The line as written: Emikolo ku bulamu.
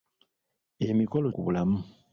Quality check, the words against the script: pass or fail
pass